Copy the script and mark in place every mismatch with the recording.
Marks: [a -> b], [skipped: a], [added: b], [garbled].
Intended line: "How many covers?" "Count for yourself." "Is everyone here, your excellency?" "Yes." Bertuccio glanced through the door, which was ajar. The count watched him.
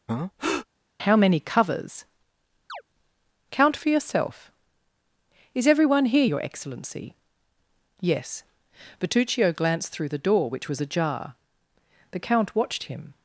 "How many covers?" "Count for yourself." "Is everyone here, your excellency?" "Yes." Bertuccio glanced through the door, which was ajar. The count watched him.